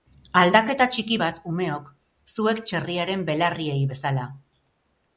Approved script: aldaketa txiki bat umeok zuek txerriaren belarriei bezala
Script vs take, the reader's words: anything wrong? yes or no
no